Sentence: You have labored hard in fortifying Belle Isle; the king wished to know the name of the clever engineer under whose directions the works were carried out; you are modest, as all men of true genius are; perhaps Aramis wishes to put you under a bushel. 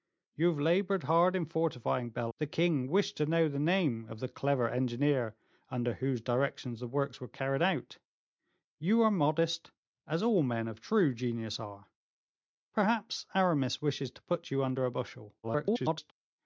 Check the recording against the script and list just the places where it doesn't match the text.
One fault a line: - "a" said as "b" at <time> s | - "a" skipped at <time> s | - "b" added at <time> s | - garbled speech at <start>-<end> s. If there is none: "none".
- "Isle" skipped at 2.3 s
- garbled speech at 15.4-16.1 s